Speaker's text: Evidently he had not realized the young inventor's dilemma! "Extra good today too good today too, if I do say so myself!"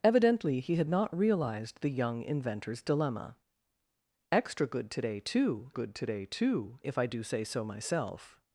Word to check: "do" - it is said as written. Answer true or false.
true